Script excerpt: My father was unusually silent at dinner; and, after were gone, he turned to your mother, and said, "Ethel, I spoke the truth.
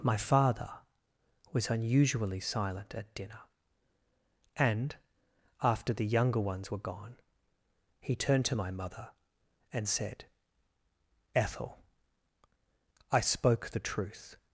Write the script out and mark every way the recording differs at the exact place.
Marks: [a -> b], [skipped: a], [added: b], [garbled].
My father was unusually silent at dinner; and, after [added: the younger ones] were gone, he turned to [your -> my] mother, and said, "Ethel, I spoke the truth.